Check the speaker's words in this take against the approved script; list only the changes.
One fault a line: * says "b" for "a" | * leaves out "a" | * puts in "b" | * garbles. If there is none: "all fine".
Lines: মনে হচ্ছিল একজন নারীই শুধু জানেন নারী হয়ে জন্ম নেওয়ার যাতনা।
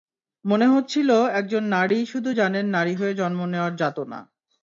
all fine